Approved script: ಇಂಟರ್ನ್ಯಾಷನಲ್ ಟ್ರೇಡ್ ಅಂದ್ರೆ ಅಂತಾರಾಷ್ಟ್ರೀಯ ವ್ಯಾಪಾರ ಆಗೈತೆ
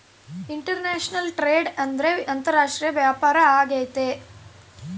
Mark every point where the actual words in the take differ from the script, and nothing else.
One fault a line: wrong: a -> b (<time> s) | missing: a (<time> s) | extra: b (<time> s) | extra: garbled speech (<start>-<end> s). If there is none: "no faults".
no faults